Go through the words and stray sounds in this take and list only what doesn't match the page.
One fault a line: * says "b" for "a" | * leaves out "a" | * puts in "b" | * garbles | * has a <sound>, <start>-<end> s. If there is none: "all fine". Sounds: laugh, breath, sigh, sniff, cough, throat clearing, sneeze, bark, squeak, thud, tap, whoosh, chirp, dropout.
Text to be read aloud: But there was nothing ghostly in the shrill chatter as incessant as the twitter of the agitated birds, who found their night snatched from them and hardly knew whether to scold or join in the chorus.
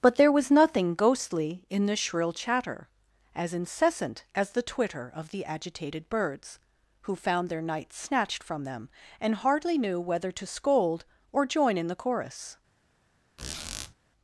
* has a squeak, 13.4-13.9 s